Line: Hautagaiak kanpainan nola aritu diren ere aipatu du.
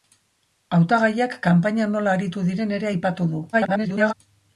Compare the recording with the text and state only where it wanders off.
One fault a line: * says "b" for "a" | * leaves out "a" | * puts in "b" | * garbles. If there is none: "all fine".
* garbles